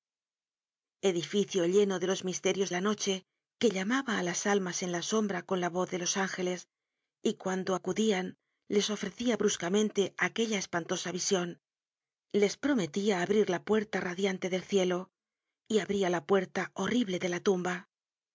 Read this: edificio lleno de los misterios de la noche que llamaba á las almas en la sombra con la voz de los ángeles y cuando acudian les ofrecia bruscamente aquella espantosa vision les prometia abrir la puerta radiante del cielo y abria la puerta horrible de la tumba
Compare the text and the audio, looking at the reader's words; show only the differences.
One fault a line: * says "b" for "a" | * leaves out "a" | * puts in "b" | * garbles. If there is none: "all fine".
* leaves out "de"